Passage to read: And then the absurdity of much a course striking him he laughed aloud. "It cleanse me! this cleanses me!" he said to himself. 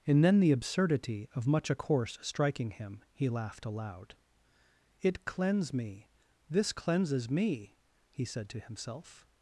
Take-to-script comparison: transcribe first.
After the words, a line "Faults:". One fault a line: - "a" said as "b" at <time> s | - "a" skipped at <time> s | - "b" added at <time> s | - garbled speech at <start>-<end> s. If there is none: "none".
And then the absurdity of much a course striking him he laughed aloud. "It cleanse me! this cleanses me!" he said to himself.
Faults:
none